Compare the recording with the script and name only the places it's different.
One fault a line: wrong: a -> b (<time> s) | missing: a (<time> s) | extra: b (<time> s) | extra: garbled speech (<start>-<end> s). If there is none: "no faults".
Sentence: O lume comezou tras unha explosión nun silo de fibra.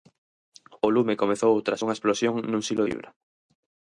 missing: de (2.8 s)